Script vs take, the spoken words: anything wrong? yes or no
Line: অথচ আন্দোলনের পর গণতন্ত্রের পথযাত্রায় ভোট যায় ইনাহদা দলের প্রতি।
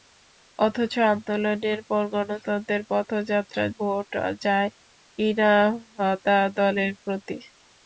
no